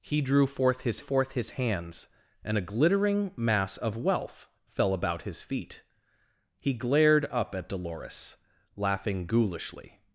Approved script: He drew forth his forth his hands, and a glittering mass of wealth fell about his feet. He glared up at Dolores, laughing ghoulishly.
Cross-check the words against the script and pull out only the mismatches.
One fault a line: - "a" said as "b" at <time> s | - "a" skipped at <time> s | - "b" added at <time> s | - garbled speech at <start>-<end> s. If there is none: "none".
none